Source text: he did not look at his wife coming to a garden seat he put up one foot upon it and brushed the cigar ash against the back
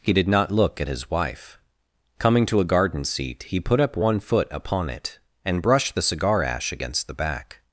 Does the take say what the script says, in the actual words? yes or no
yes